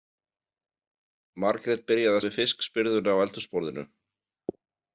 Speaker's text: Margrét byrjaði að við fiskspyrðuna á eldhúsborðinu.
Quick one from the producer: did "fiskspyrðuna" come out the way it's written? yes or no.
yes